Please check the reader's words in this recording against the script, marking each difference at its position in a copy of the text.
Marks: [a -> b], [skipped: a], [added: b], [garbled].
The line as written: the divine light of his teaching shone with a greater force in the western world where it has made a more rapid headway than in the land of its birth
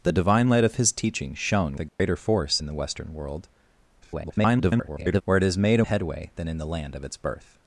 the divine light of his teaching shone [skipped: with] a greater force in the western world [garbled] where it has made a [skipped: more rapid] headway than in the land of its birth